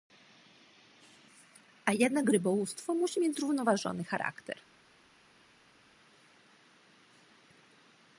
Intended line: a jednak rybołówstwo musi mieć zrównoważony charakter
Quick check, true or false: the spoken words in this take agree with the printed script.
true